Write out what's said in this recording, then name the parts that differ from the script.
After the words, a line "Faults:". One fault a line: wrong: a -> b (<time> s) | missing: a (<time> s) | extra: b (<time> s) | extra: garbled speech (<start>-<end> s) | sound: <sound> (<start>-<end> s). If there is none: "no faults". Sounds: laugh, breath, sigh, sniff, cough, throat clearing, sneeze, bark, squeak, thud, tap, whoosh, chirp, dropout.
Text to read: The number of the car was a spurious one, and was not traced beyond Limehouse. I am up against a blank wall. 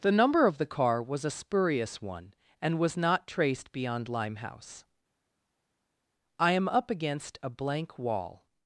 The number of the car was a spurious one, and was not traced beyond Limehouse. I am up against a blank wall.
Faults:
no faults